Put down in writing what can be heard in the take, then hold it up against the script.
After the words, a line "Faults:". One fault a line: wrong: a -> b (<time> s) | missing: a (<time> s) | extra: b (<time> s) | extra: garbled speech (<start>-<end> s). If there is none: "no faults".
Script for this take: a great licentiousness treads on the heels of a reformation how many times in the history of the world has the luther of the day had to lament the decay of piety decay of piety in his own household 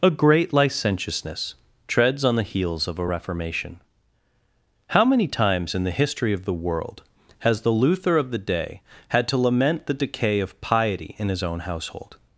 a great licentiousness treads on the heels of a reformation how many times in the history of the world has the luther of the day had to lament the decay of piety in his own household
Faults:
missing: decay of piety (11.2 s)